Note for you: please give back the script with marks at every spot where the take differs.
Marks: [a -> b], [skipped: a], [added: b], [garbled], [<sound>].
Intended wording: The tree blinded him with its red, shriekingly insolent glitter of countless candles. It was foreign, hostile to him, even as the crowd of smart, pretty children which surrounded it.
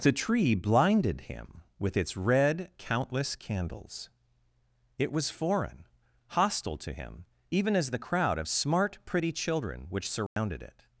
The tree blinded him with its red, [skipped: shriekingly insolent glitter of] countless candles. It was foreign, hostile to him, even as the crowd of smart, pretty children which surrounded [dropout] it.